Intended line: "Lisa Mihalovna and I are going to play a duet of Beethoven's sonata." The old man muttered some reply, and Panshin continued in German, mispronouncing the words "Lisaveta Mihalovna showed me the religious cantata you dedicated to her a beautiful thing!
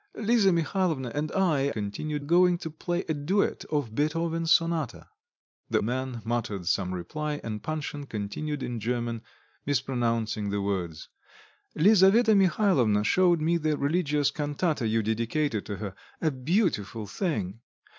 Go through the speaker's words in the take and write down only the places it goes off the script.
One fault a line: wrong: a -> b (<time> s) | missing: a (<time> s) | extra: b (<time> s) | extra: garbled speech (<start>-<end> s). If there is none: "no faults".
wrong: are -> continued (1.7 s)
missing: old (5.8 s)